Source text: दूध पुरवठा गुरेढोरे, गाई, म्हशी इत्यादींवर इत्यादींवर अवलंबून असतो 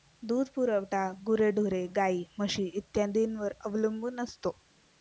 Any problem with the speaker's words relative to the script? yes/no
yes